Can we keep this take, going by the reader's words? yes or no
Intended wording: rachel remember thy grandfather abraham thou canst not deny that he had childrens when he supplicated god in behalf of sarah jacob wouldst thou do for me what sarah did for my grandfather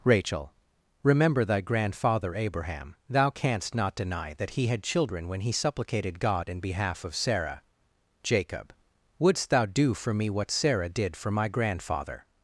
no